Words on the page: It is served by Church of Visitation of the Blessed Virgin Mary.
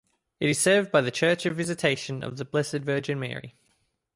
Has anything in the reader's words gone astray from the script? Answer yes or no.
yes